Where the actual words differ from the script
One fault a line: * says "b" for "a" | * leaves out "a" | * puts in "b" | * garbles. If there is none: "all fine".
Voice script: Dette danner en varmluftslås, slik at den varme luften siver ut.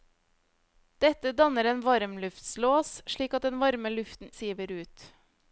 all fine